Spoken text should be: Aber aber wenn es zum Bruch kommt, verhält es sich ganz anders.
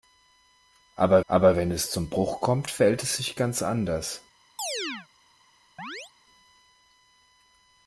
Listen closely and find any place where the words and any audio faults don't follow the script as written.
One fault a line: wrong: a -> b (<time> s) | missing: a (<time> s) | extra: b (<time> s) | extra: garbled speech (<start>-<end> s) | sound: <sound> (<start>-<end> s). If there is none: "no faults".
sound: chirp (4.6-5.1 s)
sound: chirp (5.8-6.1 s)